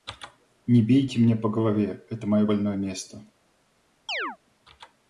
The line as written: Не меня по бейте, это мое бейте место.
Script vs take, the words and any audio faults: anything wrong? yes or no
yes